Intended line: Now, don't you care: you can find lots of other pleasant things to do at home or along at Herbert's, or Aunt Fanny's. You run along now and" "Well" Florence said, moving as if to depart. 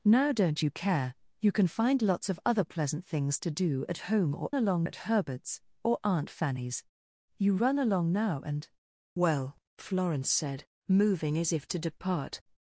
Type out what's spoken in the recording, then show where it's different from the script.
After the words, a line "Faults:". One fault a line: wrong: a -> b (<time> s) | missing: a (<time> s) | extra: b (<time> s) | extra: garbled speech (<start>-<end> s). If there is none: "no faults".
Now, don't you care: you can find lots of other pleasant things to do at home or along at Herbert's, or Aunt Fanny's. You run along now and" "Well" Florence said, moving as if to depart.
Faults:
no faults